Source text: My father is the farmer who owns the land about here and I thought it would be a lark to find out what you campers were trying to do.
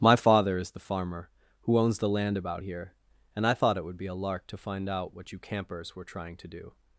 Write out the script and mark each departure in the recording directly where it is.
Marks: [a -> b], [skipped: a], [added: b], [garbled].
My father is the farmer who owns the land about here and I thought it would be a lark to find out what you campers were trying to do.